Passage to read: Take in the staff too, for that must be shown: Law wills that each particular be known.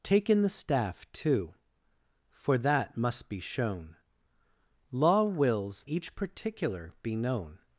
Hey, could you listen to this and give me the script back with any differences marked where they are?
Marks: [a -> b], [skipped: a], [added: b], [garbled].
Take in the staff too, for that must be shown: Law wills [skipped: that] each particular be known.